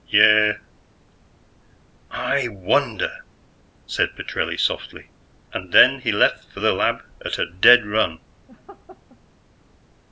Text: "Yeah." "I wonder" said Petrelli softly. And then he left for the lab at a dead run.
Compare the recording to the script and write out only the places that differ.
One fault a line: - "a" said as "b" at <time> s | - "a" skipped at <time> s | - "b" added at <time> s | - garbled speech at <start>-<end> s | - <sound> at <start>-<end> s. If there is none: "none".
- laugh at 8.5-9.2 s